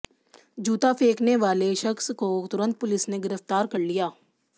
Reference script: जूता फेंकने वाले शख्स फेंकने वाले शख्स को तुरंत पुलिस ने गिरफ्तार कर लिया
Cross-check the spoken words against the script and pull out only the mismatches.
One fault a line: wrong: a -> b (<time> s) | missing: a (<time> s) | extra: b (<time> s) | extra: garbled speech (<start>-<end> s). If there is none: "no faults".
missing: फेंकने वाले शख्स (2.1 s)